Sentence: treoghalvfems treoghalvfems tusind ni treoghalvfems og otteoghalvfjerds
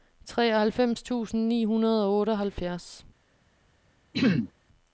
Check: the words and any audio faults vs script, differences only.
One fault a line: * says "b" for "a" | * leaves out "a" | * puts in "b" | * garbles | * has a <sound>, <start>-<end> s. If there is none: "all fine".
* leaves out "treoghalvfems"
* says "hundrede" for "treoghalvfems"
* has a throat clearing, 4.1-4.5 s